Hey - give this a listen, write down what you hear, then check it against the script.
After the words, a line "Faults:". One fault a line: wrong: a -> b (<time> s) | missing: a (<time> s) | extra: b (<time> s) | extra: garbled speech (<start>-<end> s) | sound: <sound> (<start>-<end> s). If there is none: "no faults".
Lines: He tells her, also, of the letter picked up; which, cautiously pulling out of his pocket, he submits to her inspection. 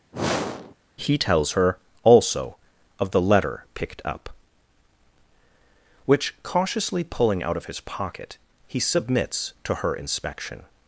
He tells her, also, of the letter picked up; which, cautiously pulling out of his pocket, he submits to her inspection.
Faults:
sound: sniff (0.1-0.8 s)